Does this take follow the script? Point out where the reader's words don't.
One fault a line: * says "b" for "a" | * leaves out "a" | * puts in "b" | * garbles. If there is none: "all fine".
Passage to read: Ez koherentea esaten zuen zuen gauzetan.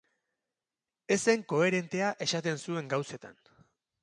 * puts in "zen"
* leaves out "zuen"